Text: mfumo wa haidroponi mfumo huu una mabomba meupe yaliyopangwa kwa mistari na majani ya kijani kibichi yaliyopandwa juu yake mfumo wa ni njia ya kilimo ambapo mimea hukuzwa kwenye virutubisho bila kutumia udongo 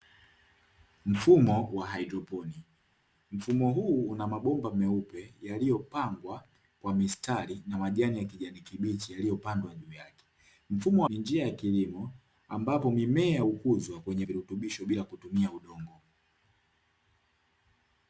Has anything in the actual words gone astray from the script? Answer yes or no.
no